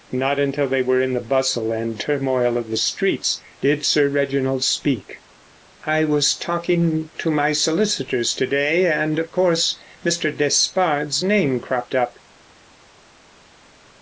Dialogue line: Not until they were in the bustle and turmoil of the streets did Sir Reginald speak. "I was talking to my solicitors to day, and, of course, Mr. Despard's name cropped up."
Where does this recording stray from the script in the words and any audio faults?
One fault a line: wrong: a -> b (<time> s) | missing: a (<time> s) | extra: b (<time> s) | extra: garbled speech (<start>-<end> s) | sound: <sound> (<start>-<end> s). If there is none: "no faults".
no faults